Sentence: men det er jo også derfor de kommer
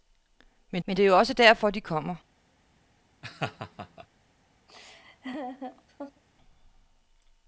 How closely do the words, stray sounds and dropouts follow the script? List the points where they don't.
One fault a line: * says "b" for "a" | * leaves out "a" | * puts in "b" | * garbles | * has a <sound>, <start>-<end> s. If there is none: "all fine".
* puts in "men"
* has a laugh, 3.2-4.1 s
* has a laugh, 4.7-6.2 s